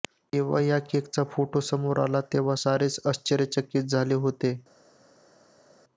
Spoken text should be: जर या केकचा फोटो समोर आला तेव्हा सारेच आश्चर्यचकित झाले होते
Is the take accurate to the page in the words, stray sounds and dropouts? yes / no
no